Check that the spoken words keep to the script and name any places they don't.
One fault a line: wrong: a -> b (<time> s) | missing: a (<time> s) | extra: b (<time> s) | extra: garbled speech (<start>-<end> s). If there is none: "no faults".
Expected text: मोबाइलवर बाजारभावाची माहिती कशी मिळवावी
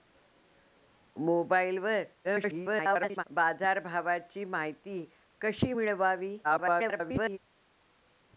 extra: garbled speech (2.2-3.2 s)
extra: garbled speech (6.4-7.4 s)